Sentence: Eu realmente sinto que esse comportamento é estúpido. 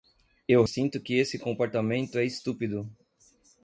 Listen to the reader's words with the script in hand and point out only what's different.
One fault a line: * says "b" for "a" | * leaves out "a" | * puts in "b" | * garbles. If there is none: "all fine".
* leaves out "realmente"